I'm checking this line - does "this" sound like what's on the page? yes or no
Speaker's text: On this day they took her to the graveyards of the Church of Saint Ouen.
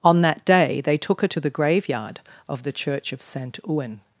no